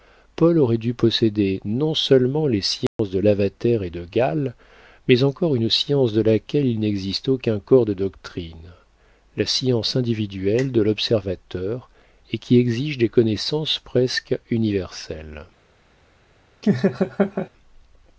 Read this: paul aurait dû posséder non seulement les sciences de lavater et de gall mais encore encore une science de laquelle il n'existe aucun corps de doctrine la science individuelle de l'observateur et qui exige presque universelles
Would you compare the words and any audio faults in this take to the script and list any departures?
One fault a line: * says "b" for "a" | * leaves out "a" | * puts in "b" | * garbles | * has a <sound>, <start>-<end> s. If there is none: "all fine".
* has a dropout, 2.9-3.0 s
* leaves out "encore"
* puts in "des connaissances"
* has a laugh, 16.6-17.5 s